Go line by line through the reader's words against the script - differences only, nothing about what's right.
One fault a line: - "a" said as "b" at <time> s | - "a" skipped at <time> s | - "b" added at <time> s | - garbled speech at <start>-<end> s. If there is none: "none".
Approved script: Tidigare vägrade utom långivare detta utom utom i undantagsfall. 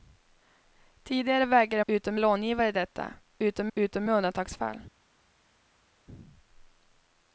none